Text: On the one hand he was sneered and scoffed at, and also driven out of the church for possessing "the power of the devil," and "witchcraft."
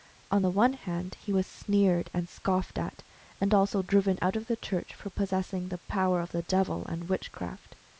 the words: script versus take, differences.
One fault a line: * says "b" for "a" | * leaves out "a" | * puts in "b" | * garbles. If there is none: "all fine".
all fine